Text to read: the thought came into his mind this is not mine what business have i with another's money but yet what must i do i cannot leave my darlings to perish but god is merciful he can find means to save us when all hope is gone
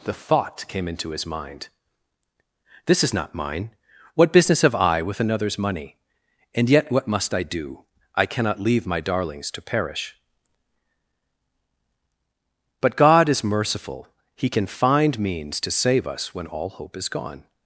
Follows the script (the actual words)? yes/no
no